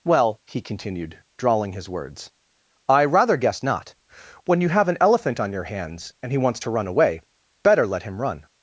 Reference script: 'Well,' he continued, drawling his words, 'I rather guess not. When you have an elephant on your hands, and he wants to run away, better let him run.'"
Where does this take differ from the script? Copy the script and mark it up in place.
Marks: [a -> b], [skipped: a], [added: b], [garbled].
'Well,' he continued, drawling his words, 'I rather guess not. When you have an elephant on your hands, and he wants to run away, better let him run.'"